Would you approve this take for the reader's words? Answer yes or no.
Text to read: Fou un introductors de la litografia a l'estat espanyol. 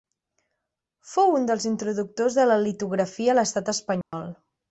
no